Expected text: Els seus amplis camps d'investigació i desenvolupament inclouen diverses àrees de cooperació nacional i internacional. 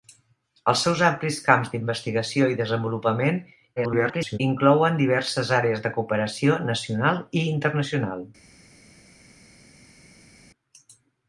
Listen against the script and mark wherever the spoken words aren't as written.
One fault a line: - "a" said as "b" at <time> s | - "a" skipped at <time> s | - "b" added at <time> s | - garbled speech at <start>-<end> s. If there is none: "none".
- garbled speech at 3.8-4.4 s